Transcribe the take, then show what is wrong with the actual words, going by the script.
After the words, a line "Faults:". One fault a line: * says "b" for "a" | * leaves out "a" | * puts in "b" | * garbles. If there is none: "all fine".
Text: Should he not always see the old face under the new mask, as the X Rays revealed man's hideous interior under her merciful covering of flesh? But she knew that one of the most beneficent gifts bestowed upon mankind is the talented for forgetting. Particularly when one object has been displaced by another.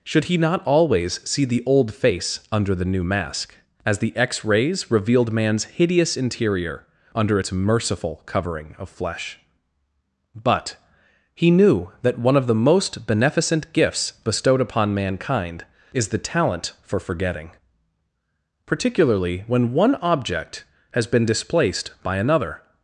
Should he not always see the old face under the new mask, as the X Rays revealed man's hideous interior under its merciful covering of flesh? But he knew that one of the most beneficent gifts bestowed upon mankind is the talent for forgetting. Particularly when one object has been displaced by another.
Faults:
* says "its" for "her"
* says "he" for "she"
* says "talent" for "talented"